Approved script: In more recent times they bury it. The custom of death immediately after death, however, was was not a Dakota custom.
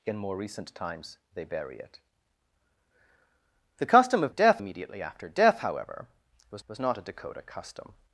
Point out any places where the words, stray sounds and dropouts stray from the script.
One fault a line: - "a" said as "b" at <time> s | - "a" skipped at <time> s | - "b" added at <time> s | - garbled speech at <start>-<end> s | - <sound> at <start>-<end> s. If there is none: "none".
none